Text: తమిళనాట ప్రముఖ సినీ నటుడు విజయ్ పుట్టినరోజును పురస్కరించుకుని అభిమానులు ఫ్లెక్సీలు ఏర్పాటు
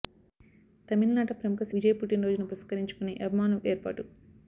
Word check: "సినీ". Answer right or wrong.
wrong